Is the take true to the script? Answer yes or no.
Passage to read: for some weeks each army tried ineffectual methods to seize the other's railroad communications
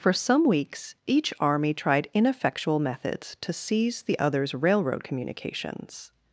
yes